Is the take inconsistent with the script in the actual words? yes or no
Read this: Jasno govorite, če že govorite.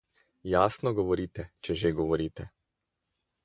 no